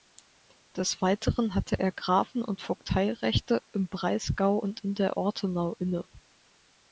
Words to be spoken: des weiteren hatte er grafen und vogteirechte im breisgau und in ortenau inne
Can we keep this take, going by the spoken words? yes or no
no